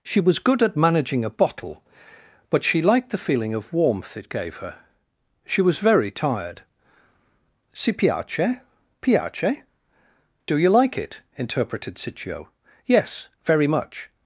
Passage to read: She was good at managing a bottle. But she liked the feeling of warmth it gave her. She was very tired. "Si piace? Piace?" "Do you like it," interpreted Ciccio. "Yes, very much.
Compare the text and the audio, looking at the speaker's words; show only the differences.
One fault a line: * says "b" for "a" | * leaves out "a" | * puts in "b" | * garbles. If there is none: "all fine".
all fine